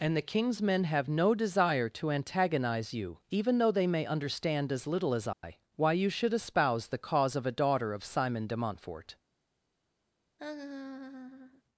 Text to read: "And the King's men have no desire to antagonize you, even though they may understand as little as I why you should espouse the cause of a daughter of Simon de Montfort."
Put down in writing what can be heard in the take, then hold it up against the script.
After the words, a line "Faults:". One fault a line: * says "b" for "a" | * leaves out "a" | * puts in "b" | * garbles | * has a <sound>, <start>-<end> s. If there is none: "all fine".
"And the King's men have no desire to antagonize you, even though they may understand as little as I why you should espouse the cause of a daughter of Simon de Montfort."
Faults:
* has a dropout, 5.3-5.4 s
* has a laugh, 10.4-11.6 s